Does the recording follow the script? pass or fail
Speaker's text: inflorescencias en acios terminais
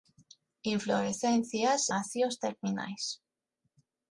fail